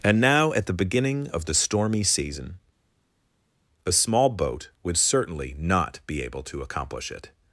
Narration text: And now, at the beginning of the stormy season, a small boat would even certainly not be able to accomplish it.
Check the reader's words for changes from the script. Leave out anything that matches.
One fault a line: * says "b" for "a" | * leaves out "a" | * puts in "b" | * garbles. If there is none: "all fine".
* leaves out "even"